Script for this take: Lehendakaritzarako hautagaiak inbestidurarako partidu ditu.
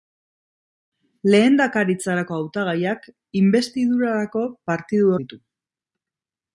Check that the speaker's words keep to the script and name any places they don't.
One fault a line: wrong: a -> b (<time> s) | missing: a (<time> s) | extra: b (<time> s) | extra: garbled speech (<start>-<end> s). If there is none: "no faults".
no faults